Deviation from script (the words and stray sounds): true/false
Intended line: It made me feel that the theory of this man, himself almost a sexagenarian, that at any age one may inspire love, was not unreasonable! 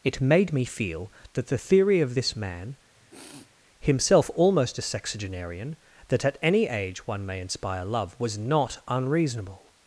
true